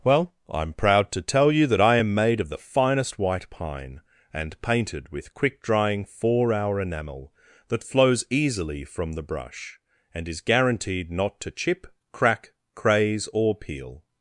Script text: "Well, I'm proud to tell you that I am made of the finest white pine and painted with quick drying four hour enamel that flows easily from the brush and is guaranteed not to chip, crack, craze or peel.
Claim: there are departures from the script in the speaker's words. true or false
false